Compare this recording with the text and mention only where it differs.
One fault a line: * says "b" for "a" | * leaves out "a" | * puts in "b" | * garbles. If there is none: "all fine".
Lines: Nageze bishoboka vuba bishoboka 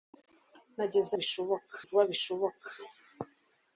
all fine